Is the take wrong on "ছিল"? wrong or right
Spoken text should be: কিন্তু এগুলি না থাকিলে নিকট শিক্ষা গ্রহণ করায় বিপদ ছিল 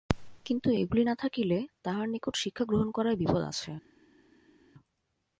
wrong